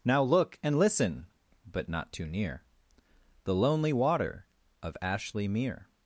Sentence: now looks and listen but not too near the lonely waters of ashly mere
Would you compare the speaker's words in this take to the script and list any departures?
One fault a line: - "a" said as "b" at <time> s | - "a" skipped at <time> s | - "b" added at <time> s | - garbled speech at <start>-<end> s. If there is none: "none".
- "looks" said as "look" at 0.2 s
- "waters" said as "water" at 3.9 s